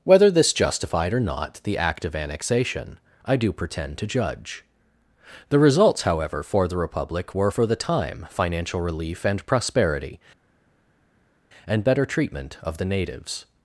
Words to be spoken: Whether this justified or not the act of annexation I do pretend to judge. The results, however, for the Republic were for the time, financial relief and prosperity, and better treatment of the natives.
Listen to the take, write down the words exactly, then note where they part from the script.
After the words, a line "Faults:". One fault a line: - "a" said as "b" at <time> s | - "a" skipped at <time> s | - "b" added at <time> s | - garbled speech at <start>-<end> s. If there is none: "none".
Whether this justified or not the act of annexation I do pretend to judge. The results, however, for the Republic were for the time, financial relief and prosperity, and better treatment of the natives.
Faults:
none